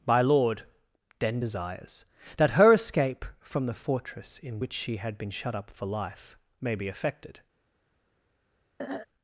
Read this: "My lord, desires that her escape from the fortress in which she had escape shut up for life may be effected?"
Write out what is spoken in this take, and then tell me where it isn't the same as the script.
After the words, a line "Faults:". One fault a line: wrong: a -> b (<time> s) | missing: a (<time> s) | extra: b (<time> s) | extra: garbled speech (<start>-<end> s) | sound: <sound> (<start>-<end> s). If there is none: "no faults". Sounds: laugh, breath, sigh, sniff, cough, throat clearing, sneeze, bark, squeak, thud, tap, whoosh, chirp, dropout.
"My lord, then, desires that her escape from the fortress in which she had been shut up for life may be effected?"
Faults:
extra: then (1.2 s)
wrong: escape -> been (5.2 s)
sound: throat clearing (8.8-9.1 s)